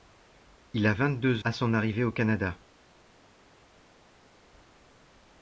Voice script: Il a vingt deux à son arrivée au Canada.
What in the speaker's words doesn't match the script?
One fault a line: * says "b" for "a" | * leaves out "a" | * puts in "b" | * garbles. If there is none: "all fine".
all fine